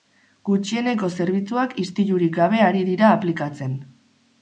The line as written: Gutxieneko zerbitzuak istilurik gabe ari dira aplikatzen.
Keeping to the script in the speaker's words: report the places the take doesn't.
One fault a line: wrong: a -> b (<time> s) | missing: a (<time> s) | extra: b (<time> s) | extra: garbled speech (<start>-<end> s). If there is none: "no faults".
no faults